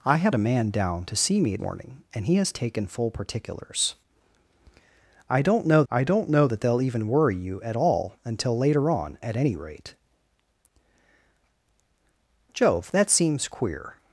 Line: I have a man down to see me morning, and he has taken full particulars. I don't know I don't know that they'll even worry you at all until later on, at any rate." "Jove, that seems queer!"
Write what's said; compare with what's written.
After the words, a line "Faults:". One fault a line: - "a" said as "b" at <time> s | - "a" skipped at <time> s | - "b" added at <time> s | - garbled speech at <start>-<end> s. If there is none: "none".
I have a man down to see me morning, and he has taken full particulars. I don't know I don't know that they'll even worry you at all until later on, at any rate." "Jove, that seems queer!"
Faults:
none